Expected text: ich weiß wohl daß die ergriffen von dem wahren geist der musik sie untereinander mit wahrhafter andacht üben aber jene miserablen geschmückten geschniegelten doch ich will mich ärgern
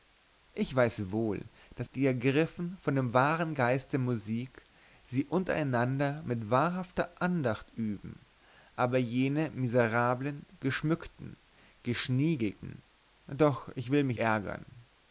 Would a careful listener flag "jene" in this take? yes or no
no